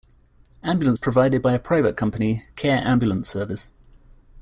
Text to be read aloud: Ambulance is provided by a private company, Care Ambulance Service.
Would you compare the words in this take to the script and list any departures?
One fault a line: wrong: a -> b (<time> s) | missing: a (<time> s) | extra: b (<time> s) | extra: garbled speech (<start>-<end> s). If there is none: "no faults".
no faults